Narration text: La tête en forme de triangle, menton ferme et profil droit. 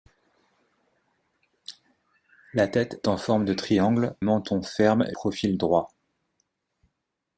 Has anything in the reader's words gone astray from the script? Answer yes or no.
no